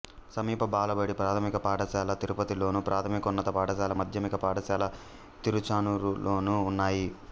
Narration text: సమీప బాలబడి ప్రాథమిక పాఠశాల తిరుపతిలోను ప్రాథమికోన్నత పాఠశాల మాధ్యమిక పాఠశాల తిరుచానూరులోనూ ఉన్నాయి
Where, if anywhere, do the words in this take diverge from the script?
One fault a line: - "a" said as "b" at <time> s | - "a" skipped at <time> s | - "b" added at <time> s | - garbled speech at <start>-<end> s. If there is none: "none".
none